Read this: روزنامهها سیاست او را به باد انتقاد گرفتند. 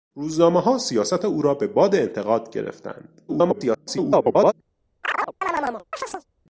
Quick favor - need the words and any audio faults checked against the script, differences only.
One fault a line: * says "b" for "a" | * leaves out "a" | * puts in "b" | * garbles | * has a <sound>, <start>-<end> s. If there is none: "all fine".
* garbles
* has a chirp, 5.0-6.3 s